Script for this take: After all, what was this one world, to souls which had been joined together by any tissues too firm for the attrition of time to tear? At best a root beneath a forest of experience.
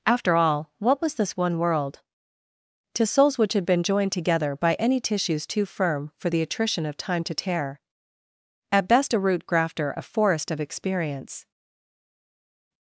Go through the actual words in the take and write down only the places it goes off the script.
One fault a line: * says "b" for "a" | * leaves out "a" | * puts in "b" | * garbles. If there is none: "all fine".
* says "grafter" for "beneath"